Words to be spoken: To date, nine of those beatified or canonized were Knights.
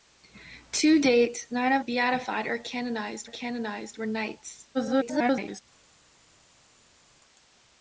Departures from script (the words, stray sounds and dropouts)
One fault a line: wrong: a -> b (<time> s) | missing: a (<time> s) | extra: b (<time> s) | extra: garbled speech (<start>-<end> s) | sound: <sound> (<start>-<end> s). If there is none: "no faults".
missing: those (1.9 s)
extra: canonized (3.3 s)
extra: garbled speech (4.7-5.6 s)